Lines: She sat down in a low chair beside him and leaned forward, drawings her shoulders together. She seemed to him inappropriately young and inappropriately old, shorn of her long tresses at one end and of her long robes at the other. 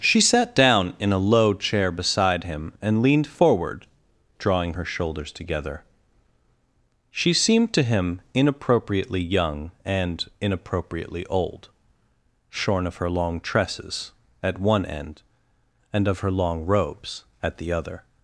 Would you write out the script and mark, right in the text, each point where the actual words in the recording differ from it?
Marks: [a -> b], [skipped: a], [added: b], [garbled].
She sat down in a low chair beside him and leaned forward, [drawings -> drawing] her shoulders together. She seemed to him inappropriately young and inappropriately old, shorn of her long tresses at one end and of her long robes at the other.